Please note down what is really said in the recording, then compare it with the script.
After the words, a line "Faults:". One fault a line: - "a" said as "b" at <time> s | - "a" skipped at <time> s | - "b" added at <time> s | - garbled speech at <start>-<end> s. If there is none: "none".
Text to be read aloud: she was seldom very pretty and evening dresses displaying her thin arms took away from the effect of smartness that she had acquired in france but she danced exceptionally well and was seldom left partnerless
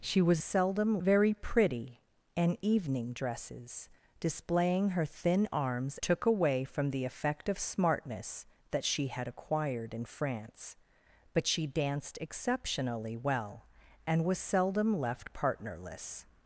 she was seldom very pretty and evening dresses displaying her thin arms took away from the effect of smartness that she had acquired in france but she danced exceptionally well and was seldom left partnerless
Faults:
none